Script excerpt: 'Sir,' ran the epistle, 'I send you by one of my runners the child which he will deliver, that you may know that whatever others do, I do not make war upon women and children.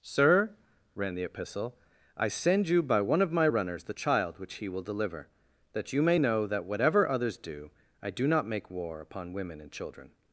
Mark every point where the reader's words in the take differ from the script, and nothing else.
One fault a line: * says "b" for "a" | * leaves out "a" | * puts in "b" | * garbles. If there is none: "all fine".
all fine